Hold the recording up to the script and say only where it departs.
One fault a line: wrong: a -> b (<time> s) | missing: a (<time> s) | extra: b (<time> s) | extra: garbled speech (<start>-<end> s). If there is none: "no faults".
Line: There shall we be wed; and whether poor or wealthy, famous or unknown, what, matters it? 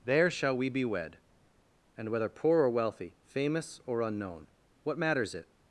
no faults